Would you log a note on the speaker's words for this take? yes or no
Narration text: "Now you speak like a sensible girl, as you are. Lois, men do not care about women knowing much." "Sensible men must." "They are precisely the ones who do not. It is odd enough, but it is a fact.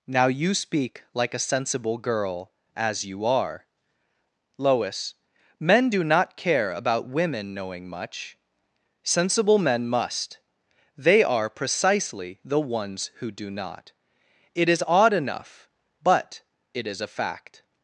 no